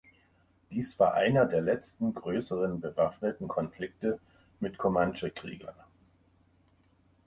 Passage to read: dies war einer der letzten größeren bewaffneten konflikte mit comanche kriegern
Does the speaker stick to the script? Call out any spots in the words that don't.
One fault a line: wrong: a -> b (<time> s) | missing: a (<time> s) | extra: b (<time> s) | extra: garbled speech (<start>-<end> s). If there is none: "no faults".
no faults